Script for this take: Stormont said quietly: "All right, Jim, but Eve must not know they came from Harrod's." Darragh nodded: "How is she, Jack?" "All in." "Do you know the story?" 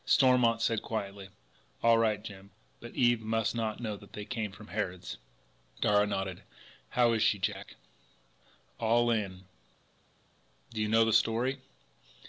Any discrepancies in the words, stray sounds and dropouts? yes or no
yes